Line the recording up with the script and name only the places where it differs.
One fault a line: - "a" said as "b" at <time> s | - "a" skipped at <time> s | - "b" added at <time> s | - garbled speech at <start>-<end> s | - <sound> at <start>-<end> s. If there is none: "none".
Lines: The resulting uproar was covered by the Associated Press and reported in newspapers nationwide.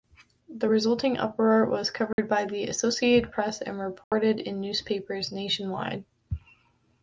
- dropout at 2.1-2.2 s
- dropout at 4.0-4.1 s